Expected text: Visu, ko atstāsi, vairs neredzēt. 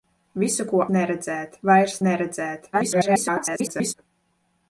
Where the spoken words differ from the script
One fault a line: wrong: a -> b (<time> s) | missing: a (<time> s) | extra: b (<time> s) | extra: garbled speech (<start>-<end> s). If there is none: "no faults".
wrong: atstāsi -> neredzēt (1.0 s)
extra: garbled speech (2.7-3.9 s)